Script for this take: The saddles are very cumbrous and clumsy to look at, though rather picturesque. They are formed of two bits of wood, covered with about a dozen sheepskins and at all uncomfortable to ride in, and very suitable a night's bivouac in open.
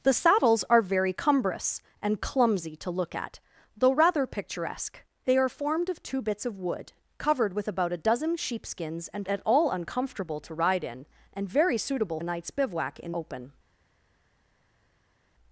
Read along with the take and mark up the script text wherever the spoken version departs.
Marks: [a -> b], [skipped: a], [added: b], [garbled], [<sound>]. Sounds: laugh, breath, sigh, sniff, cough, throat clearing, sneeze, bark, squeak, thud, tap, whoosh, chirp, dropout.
The saddles are very cumbrous and clumsy to look at, though rather picturesque. They are formed of two bits of wood, covered with about a dozen sheepskins and at all uncomfortable to ride in, and very suitable a night's bivouac in open.